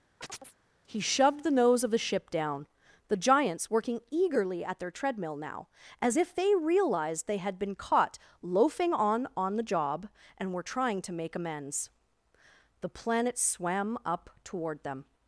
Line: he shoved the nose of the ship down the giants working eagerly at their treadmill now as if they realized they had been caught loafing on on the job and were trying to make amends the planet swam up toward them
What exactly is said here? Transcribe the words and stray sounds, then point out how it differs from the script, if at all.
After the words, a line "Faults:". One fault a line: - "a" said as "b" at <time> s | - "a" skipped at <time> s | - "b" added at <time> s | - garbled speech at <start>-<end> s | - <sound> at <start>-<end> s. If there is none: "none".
he shoved the nose of the ship down the giants working eagerly at their treadmill now as if they realized they had been caught loafing on on the job and were trying to make amends the planet swam up toward them
Faults:
- chirp at 0.2-0.6 s